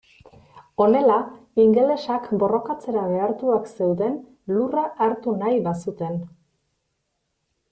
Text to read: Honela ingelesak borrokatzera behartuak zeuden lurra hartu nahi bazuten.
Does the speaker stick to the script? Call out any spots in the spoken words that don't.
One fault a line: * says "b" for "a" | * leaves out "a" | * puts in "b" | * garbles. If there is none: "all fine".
all fine